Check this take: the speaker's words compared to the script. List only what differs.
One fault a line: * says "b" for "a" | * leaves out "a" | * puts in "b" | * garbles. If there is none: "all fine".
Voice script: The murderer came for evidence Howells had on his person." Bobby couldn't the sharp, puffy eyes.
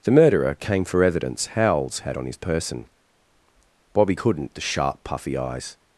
all fine